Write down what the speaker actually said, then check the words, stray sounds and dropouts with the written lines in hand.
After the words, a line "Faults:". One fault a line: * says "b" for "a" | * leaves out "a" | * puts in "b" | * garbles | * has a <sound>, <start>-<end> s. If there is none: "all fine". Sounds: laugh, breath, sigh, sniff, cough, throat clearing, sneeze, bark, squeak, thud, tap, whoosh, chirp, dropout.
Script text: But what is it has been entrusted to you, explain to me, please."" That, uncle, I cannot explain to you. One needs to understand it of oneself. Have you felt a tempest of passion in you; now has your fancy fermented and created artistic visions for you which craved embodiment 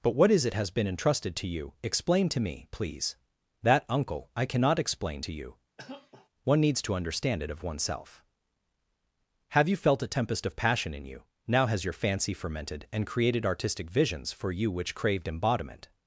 But what is it has been entrusted to you, explain to me, please."" That, uncle, I cannot explain to you. One needs to understand it of oneself. Have you felt a tempest of passion in you; now has your fancy fermented and created artistic visions for you which craved embodiment
Faults:
* has a cough, 5.8-6.3 s